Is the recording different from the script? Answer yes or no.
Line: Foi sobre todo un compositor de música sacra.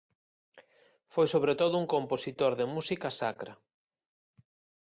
no